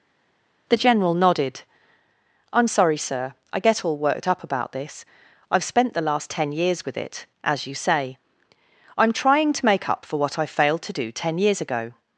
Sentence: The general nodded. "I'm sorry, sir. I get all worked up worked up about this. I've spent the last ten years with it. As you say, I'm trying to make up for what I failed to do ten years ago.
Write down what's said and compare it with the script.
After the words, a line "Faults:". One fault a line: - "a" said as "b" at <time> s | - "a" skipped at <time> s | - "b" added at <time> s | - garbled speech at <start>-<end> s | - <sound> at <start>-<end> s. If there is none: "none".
The general nodded. "I'm sorry, sir. I get all worked up about this. I've spent the last ten years with it. As you say, I'm trying to make up for what I failed to do ten years ago.
Faults:
- "worked up" skipped at 4.4 s